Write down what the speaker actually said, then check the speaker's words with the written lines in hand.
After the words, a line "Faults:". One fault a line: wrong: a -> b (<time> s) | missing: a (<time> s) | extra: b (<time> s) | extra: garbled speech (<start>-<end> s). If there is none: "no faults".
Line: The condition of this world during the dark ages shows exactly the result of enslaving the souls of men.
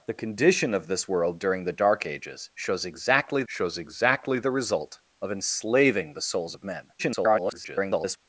The condition of this world during the dark ages shows exactly shows exactly the result of enslaving the souls of men. [garbled]
Faults:
extra: shows exactly (3.5 s)
extra: garbled speech (7.0-8.2 s)